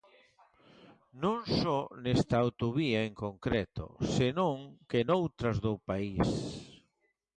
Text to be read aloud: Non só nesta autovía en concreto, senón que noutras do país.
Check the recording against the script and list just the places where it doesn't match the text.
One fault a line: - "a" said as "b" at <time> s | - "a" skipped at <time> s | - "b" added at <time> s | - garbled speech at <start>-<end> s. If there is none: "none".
none